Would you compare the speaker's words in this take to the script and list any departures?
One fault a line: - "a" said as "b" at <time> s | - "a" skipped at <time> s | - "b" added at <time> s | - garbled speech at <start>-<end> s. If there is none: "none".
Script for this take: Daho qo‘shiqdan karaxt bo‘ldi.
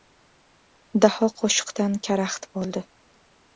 none